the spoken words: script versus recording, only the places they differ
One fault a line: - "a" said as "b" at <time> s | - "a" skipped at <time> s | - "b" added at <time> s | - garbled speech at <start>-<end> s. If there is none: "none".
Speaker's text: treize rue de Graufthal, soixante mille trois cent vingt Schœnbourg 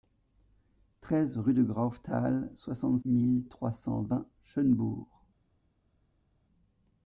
none